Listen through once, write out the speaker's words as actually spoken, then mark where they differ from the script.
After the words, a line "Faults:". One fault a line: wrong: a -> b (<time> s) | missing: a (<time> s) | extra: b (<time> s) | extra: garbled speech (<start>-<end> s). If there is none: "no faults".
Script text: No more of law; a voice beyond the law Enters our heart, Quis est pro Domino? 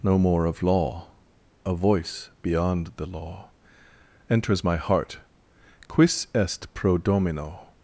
No more of law; a voice beyond the law Enters my heart, Quis est pro Domino?
Faults:
wrong: our -> my (4.6 s)